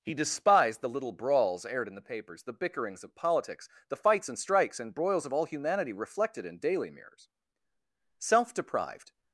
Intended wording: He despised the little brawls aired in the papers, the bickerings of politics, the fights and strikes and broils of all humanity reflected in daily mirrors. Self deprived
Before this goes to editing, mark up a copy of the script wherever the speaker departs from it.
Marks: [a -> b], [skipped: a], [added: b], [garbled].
He despised the little brawls aired in the papers, the bickerings of politics, the fights and strikes and broils of all humanity reflected in daily mirrors. Self deprived